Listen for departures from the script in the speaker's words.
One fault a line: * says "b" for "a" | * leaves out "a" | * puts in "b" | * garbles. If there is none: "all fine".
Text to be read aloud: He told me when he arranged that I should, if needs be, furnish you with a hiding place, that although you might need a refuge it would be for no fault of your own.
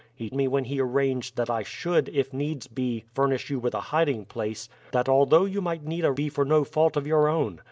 * leaves out "told"
* leaves out "refuge it would"